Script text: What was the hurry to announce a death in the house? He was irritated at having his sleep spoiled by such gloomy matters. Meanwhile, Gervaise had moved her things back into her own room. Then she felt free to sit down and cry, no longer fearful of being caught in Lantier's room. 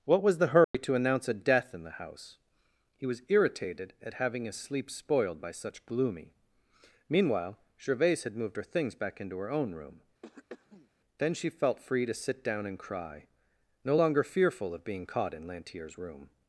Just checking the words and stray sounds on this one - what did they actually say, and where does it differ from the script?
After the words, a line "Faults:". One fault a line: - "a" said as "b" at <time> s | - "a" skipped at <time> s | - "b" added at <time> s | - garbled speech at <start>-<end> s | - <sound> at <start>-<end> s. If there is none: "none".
What was the hurry to announce a death in the house? He was irritated at having his sleep spoiled by such gloomy. Meanwhile, Gervaise had moved her things back into her own room. Then she felt free to sit down and cry, no longer fearful of being caught in Lantier's room.
Faults:
- dropout at 0.6-0.7 s
- "matters" skipped at 6.3 s
- throat clearing at 10.2-10.9 s